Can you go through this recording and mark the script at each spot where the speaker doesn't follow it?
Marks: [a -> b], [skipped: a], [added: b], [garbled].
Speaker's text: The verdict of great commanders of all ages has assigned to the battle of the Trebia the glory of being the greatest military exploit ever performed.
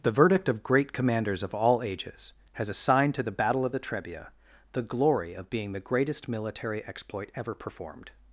The verdict of great commanders of all ages has assigned to the battle of the Trebia the glory of being the greatest military exploit ever performed.